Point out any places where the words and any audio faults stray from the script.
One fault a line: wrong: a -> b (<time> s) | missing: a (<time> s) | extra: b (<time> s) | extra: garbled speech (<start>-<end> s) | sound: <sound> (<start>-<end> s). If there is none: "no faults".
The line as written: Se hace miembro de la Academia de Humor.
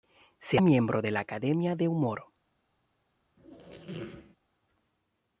missing: hace (0.6 s)
sound: squeak (3.4-4.4 s)